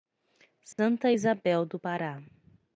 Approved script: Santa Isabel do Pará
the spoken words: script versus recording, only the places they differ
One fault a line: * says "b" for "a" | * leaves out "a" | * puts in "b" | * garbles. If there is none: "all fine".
all fine